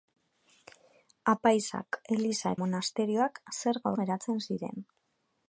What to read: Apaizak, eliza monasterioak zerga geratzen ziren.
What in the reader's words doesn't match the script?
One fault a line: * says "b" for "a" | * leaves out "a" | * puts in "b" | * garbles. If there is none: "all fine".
all fine